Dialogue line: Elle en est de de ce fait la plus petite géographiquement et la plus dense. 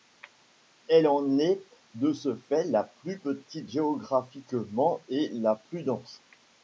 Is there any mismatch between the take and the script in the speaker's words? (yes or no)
yes